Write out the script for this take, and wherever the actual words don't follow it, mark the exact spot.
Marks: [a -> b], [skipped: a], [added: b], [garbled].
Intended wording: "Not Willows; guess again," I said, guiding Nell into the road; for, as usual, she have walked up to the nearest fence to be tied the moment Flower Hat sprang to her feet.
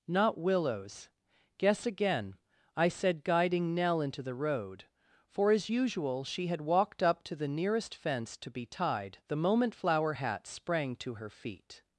"Not Willows; guess again," I said, guiding Nell into the road; for, as usual, she [have -> had] walked up to the nearest fence to be tied the moment Flower Hat sprang to her feet.